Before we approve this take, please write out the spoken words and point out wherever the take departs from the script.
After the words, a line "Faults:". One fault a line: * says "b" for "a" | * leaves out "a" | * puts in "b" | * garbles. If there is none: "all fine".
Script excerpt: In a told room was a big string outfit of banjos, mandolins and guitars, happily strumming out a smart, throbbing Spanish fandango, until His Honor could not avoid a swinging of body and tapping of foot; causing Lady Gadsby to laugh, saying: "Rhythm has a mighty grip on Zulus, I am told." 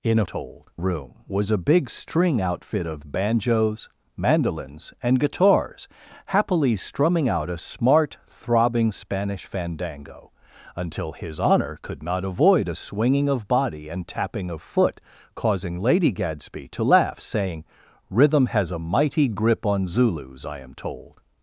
In a told room was a big string outfit of banjos, mandolins and guitars, happily strumming out a smart, throbbing Spanish fandango, until His Honor could not avoid a swinging of body and tapping of foot; causing Lady Gadsby to laugh, saying: "Rhythm has a mighty grip on Zulus, I am told."
Faults:
all fine